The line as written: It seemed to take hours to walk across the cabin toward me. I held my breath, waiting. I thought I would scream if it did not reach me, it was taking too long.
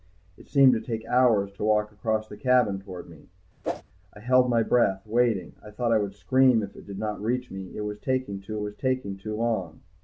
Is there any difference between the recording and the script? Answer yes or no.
yes